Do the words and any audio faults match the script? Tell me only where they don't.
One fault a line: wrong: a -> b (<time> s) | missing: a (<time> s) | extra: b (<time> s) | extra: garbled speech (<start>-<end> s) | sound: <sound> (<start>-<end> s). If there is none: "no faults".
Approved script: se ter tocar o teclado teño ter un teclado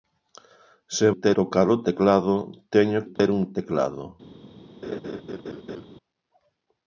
sound: dropout (3.2-3.2 s)
sound: laugh (4.8-5.9 s)